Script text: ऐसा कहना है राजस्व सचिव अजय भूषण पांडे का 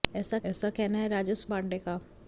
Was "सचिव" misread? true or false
true